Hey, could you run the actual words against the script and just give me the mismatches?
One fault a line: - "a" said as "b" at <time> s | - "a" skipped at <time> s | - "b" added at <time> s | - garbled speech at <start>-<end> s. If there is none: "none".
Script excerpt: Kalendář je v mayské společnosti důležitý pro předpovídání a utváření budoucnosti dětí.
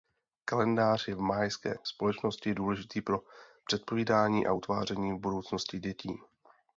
none